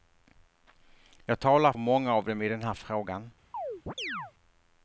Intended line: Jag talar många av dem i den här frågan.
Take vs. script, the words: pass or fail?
pass